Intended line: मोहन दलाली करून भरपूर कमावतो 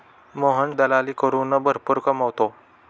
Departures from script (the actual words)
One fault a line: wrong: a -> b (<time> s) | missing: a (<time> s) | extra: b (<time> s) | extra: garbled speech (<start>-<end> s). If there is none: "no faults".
no faults